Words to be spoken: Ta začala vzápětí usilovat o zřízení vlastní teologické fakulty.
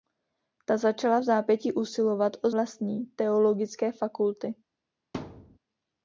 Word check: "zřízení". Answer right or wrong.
wrong